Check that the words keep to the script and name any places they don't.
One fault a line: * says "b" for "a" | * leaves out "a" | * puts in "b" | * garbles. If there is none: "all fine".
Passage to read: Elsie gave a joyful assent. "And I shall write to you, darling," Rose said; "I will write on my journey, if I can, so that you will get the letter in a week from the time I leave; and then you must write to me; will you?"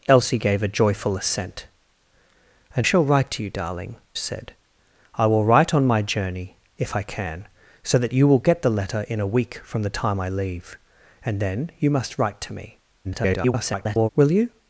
* leaves out "I"
* leaves out "Rose"
* garbles